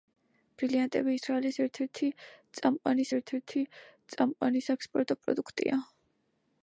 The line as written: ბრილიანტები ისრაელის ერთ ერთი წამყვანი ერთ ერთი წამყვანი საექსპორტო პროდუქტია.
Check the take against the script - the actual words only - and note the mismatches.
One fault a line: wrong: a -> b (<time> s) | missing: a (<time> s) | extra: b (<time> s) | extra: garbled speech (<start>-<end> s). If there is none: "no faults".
no faults